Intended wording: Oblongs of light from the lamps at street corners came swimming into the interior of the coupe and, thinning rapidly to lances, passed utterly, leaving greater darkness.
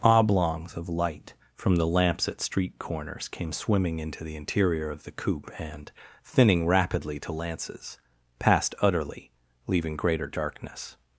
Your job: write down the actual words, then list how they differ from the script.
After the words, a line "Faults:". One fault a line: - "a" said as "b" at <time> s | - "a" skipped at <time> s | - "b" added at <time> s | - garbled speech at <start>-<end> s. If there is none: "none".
Oblongs of light from the lamps at street corners came swimming into the interior of the coupe and, thinning rapidly to lances, passed utterly, leaving greater darkness.
Faults:
none